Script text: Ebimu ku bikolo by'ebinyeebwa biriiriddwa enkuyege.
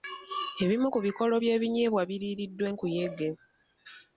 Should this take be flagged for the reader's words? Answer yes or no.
no